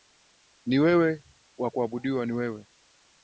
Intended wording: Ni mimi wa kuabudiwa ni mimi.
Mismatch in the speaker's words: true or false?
true